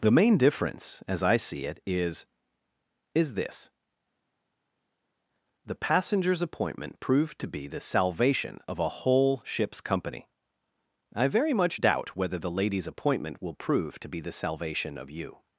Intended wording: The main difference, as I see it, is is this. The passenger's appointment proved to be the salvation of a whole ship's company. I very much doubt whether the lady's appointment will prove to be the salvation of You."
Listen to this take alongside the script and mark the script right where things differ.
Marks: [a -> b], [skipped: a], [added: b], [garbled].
The main difference, as I see it, is is this. The passenger's appointment proved to be the salvation of a whole ship's company. I very much doubt whether the lady's appointment will prove to be the salvation of You."